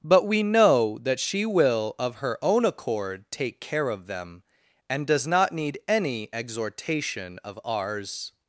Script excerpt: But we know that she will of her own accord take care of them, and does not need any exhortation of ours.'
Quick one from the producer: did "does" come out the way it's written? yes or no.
yes